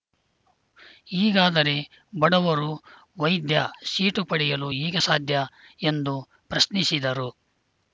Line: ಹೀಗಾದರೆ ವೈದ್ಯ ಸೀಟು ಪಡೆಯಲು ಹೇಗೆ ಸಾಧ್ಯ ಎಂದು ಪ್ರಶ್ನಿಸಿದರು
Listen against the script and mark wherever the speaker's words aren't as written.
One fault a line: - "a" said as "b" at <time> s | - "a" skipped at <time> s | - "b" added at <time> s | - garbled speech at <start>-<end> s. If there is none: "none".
- "ಬಡವರು" added at 2.2 s